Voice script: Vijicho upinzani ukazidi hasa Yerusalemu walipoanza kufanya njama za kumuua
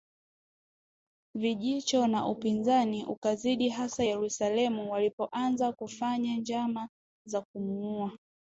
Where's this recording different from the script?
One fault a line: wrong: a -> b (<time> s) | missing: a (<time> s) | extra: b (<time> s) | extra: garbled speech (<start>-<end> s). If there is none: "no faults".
extra: na (2.1 s)